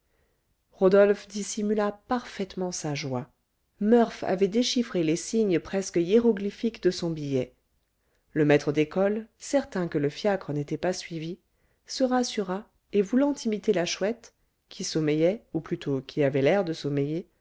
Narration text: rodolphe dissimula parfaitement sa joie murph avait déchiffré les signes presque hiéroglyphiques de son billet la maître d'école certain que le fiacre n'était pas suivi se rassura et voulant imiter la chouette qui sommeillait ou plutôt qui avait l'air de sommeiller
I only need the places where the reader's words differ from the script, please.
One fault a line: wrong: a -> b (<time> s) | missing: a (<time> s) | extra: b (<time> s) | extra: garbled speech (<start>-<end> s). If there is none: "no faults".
wrong: la -> le (8.3 s)